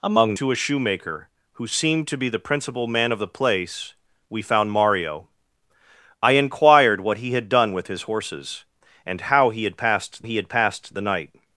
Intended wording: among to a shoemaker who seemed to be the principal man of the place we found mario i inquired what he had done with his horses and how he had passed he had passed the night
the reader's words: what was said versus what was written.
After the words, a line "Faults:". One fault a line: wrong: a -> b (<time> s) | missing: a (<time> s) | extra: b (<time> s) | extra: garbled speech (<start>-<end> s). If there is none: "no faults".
among to a shoemaker who seemed to be the principal man of the place we found mario i inquired what he had done with his horses and how he had passed he had passed the night
Faults:
no faults